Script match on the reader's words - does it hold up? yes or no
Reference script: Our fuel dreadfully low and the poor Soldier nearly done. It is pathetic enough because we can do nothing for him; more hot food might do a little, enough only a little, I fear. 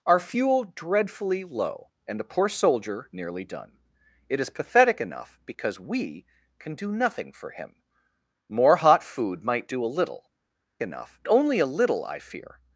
yes